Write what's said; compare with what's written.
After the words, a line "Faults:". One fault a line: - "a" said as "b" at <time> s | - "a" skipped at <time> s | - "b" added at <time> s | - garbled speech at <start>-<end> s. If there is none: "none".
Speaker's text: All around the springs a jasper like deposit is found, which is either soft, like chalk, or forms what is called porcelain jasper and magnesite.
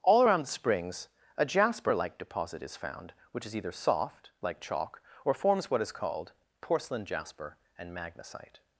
All around the springs a jasper like deposit is found, which is either soft, like chalk, or forms what is called porcelain jasper and magnesite.
Faults:
none